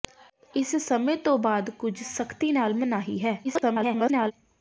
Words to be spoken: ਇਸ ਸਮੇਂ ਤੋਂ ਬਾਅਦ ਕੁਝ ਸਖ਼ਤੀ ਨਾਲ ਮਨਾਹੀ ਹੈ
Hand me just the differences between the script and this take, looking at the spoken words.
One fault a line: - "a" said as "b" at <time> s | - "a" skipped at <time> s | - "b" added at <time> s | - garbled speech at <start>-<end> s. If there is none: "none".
- garbled speech at 3.4-4.3 s